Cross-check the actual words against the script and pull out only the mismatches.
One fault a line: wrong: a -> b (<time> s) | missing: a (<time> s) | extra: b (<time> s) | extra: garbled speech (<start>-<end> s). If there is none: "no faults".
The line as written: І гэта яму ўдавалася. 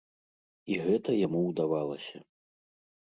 no faults